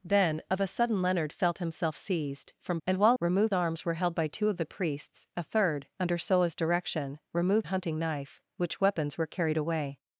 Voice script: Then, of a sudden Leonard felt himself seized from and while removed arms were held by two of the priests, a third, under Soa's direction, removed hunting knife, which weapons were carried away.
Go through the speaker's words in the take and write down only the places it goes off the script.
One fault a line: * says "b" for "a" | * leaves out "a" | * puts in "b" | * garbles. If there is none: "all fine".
all fine